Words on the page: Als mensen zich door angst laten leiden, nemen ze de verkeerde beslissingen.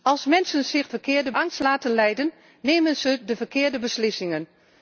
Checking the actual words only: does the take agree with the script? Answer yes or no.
no